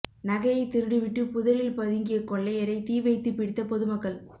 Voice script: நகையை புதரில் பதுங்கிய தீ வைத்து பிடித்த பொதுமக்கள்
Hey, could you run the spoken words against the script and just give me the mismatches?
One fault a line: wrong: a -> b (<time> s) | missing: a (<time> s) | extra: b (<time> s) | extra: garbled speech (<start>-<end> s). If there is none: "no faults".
extra: திருடிவிட்டு (0.7 s)
extra: கொள்ளையரை (2.2 s)